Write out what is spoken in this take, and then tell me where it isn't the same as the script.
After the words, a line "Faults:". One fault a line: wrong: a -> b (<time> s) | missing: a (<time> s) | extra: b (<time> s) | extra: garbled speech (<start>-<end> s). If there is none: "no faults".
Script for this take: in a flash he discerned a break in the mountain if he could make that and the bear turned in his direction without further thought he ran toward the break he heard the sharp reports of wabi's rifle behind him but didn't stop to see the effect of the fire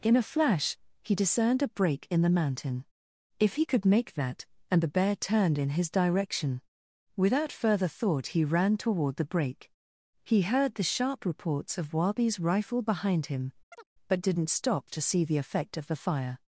in a flash he discerned a break in the mountain if he could make that and the bear turned in his direction without further thought he ran toward the break he heard the sharp reports of wabi's rifle behind him but didn't stop to see the effect of the fire
Faults:
no faults